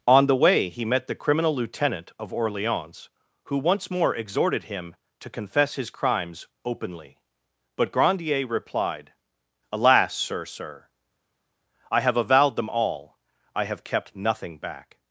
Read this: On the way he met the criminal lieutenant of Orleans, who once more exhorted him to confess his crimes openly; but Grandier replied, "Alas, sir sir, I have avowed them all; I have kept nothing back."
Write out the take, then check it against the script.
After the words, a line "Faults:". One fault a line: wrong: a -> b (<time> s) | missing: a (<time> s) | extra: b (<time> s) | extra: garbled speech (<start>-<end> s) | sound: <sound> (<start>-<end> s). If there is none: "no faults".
On the way he met the criminal lieutenant of Orleans, who once more exhorted him to confess his crimes openly; but Grandier replied, "Alas, sir sir, I have avowed them all; I have kept nothing back."
Faults:
no faults